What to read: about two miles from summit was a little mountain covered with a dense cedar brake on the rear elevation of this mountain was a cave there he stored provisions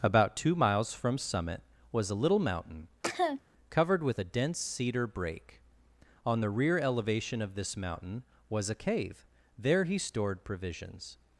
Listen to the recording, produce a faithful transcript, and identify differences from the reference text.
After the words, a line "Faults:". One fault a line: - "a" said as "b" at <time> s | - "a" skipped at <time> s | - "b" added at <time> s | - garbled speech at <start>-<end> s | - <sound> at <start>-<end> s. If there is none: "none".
about two miles from summit was a little mountain covered with a dense cedar brake on the rear elevation of this mountain was a cave there he stored provisions
Faults:
- cough at 3.0-3.4 s